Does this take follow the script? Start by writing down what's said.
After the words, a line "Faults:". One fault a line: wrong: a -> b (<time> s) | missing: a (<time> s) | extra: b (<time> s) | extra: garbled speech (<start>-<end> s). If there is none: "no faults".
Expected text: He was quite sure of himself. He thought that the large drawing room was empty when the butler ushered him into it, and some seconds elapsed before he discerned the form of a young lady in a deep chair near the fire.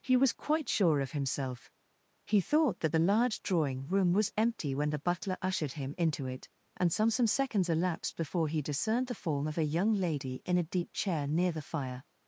He was quite sure of himself. He thought that the large drawing room was empty when the butler ushered him into it, and some some seconds elapsed before he discerned the form of a young lady in a deep chair near the fire.
Faults:
extra: some (7.1 s)